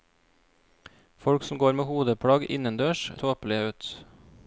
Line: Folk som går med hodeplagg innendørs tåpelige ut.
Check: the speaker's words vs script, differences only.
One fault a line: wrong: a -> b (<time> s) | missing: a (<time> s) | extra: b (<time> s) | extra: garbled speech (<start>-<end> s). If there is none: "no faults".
no faults